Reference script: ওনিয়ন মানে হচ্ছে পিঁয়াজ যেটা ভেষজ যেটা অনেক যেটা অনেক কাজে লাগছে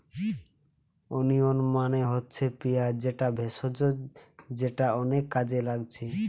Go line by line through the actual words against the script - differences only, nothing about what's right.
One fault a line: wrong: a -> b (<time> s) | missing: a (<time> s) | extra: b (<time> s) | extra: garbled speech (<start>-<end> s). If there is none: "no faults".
missing: যেটা অনেক (5.2 s)